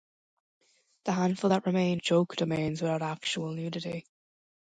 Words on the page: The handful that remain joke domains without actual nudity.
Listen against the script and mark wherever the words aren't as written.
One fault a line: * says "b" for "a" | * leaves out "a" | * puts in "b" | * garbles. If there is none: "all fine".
all fine